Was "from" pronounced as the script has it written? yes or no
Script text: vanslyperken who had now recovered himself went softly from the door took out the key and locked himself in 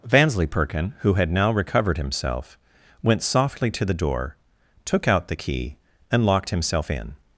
no